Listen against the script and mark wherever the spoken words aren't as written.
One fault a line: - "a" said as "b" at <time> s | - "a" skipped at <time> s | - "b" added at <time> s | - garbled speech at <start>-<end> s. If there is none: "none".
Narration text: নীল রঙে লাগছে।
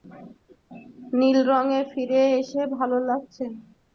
- "ফিরে এসে ভালো" added at 1.9 s